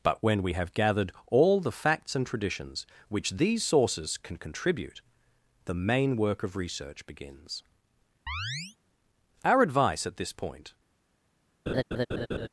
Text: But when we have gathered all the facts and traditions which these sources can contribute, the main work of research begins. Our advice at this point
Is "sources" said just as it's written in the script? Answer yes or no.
yes